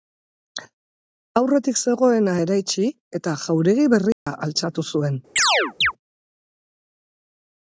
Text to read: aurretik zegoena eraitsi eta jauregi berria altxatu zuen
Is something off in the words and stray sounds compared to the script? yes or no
yes